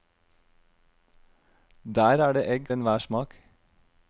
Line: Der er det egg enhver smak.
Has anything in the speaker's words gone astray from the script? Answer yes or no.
no